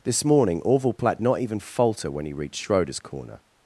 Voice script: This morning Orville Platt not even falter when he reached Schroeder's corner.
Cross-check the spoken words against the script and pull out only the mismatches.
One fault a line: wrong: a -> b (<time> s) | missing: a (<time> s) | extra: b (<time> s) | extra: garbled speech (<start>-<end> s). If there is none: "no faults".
no faults